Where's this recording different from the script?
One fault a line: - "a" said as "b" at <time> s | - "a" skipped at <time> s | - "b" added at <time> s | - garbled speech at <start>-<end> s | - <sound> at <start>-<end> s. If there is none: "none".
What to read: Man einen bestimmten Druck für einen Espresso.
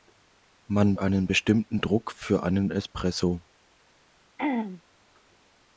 - throat clearing at 4.4-4.8 s